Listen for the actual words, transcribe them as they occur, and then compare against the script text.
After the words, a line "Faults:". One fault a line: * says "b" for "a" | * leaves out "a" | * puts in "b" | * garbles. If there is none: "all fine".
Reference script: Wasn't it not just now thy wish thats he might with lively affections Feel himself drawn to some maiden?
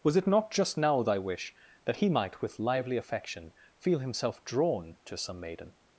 Was it not just now thy wish that he might with lively affection Feel himself drawn to some maiden?
Faults:
* says "Was" for "Wasn't"
* says "that" for "thats"
* says "affection" for "affections"